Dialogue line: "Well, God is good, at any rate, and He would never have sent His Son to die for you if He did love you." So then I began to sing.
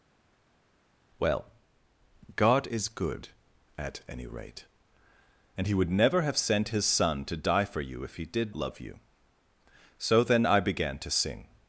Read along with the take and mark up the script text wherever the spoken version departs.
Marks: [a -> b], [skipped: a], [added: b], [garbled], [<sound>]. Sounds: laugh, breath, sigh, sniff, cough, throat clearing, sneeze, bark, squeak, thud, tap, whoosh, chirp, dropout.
"Well, God is good, at any rate, and He would never have sent His Son to die for you if He did love you." So then I began to sing.